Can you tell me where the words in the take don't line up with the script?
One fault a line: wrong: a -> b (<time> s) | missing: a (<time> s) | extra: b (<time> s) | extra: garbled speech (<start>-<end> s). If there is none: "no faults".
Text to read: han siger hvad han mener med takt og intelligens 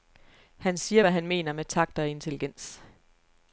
no faults